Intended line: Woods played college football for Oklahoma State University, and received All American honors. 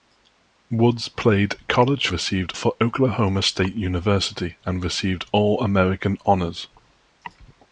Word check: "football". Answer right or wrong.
wrong